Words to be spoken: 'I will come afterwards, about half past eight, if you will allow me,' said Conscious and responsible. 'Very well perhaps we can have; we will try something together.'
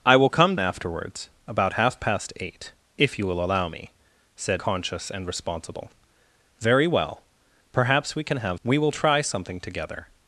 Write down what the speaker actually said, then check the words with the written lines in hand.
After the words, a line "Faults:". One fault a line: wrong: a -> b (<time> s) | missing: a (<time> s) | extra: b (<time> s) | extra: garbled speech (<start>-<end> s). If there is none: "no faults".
'I will come afterwards, about half past eight, if you will allow me,' said Conscious and responsible. 'Very well perhaps we can have; we will try something together.'
Faults:
no faults